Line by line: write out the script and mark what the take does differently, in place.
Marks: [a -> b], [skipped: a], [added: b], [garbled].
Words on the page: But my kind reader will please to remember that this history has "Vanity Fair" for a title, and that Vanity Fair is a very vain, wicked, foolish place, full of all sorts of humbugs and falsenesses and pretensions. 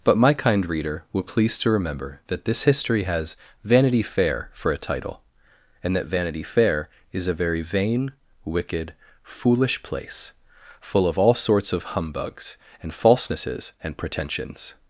But my kind reader will please to remember that this history has "Vanity Fair" for a title, and that Vanity Fair is a very vain, wicked, foolish place, full of all sorts of humbugs and falsenesses and pretensions.